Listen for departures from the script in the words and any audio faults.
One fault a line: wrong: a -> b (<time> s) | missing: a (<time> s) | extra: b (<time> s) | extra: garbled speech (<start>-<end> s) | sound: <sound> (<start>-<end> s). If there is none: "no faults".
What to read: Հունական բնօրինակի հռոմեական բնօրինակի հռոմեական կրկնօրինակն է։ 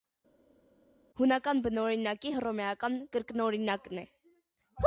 missing: բնօրինակի հռոմեական (3.0 s)